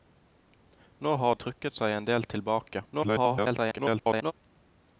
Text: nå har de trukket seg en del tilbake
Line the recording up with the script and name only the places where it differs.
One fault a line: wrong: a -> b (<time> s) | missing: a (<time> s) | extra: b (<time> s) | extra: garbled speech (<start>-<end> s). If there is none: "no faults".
missing: de (1.4 s)
extra: garbled speech (2.9-4.3 s)